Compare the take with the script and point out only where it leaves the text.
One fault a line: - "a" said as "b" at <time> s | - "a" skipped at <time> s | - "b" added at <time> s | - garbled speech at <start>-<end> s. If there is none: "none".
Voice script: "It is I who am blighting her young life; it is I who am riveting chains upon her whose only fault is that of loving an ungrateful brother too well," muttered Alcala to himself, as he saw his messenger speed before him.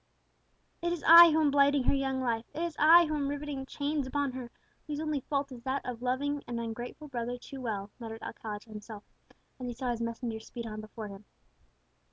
- "on" added at 10.7 s